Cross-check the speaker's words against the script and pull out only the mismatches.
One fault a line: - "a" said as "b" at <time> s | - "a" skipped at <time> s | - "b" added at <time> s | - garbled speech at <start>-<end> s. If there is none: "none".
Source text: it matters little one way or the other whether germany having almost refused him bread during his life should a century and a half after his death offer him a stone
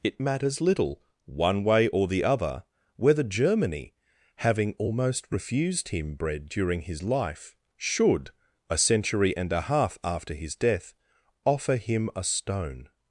none